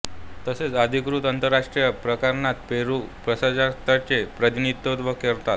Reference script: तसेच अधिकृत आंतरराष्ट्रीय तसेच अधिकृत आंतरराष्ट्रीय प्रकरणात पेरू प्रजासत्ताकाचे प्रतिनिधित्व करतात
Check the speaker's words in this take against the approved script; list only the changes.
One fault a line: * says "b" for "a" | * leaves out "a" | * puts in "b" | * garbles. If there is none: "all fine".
* leaves out "तसेच अधिकृत आंतरराष्ट्रीय"